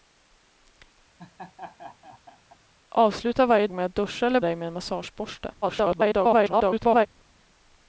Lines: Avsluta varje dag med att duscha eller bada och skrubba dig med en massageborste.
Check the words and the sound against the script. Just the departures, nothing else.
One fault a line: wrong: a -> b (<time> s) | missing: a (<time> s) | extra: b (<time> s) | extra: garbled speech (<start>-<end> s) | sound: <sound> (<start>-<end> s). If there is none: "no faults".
sound: laugh (1.2-2.6 s)
missing: dag (3.7 s)
missing: bada och skrubba (4.4 s)
extra: garbled speech (5.6-7.1 s)